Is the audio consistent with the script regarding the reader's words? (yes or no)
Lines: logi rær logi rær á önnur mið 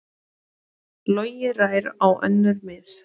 no